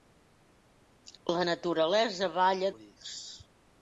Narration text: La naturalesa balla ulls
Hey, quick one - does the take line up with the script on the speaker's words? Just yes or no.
yes